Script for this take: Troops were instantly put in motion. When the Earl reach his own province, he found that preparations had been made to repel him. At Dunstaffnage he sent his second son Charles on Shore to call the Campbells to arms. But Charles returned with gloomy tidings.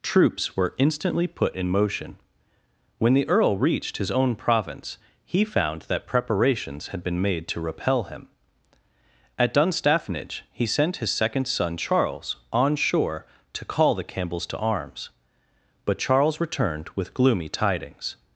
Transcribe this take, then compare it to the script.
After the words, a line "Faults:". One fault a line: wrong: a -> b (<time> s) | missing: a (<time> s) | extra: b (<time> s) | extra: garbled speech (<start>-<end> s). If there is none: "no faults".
Troops were instantly put in motion. When the Earl reached his own province, he found that preparations had been made to repel him. At Dunstaffnage he sent his second son Charles on Shore to call the Campbells to arms. But Charles returned with gloomy tidings.
Faults:
wrong: reach -> reached (3.6 s)